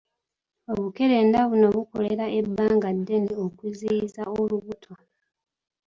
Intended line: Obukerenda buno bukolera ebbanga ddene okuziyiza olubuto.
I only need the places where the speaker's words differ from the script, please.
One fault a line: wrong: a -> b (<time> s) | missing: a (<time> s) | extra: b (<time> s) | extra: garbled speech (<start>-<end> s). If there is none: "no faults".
no faults